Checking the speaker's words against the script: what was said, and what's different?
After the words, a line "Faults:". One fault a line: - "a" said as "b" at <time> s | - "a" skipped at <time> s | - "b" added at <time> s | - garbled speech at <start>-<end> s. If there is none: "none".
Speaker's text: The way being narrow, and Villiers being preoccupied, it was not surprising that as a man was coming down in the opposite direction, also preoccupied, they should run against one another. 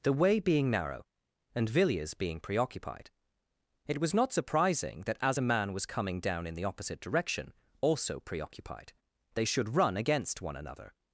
The way being narrow, and Villiers being preoccupied, it was not surprising that as a man was coming down in the opposite direction, also preoccupied, they should run against one another.
Faults:
none